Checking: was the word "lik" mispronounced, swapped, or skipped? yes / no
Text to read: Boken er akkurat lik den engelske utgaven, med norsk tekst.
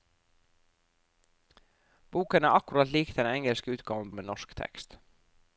no